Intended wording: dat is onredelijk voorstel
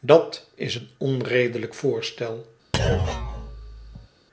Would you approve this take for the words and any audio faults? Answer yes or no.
no